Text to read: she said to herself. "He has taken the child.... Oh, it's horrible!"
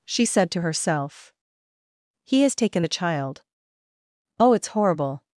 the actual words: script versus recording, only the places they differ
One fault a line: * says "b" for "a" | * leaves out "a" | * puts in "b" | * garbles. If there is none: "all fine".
all fine